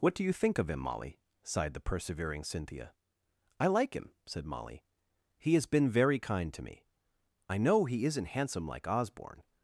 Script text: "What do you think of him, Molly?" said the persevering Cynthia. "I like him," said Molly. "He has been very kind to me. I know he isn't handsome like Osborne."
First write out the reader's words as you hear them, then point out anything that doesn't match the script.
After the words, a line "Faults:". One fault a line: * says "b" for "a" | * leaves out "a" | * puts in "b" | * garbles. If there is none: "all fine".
"What do you think of him, Molly?" sighed the persevering Cynthia. "I like him," said Molly. "He has been very kind to me. I know he isn't handsome like Osborne."
Faults:
* says "sighed" for "said"